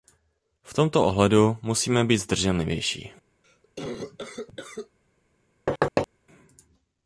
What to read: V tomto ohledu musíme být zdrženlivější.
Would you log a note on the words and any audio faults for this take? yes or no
yes